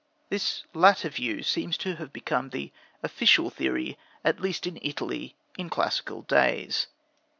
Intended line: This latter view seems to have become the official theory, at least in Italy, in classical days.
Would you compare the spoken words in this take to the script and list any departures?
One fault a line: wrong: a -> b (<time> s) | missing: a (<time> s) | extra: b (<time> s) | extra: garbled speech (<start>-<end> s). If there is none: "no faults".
no faults